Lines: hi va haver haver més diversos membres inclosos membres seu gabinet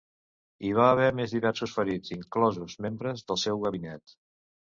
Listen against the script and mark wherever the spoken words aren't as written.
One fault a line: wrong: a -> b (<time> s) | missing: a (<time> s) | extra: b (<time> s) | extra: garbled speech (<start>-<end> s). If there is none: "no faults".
missing: haver (1.1 s)
wrong: membres -> ferits (1.8 s)
extra: del (3.3 s)